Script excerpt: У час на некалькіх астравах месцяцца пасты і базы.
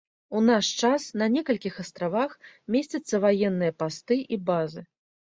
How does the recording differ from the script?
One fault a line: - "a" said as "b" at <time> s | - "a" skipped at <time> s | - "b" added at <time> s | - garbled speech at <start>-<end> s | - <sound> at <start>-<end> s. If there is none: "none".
- "наш" added at 0.5 s
- "ваенныя" added at 3.2 s